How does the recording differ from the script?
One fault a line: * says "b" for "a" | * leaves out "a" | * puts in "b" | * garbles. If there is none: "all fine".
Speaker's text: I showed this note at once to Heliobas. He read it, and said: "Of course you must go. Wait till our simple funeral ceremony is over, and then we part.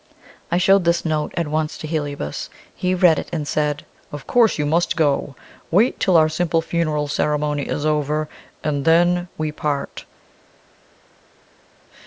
all fine